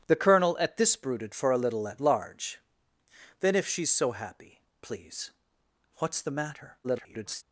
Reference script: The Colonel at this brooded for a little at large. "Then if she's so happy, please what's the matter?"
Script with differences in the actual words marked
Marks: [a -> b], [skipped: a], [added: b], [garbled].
The Colonel at this brooded for a little at large. "Then if she's so happy, please what's the matter?" [garbled]